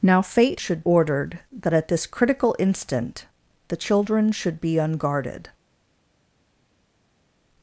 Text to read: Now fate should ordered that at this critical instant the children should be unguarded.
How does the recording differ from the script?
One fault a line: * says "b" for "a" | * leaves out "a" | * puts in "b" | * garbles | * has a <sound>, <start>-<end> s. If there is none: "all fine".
all fine